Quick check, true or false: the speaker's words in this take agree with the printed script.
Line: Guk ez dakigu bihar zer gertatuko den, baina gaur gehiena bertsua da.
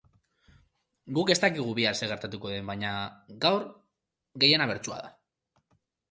true